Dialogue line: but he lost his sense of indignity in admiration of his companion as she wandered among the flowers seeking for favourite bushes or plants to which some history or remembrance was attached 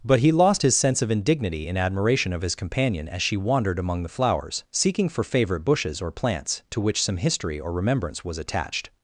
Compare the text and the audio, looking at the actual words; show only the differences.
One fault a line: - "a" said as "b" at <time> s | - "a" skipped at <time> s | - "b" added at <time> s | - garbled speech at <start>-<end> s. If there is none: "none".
none